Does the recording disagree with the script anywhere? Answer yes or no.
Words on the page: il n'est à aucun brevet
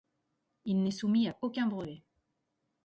yes